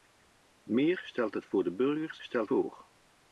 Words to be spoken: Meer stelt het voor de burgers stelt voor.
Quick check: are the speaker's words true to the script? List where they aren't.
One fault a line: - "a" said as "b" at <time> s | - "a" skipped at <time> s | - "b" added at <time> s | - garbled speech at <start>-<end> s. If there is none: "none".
none